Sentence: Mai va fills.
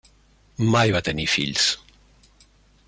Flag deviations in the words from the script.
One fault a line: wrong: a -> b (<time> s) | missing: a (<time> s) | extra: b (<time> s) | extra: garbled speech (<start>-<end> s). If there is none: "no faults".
extra: tenir (1.1 s)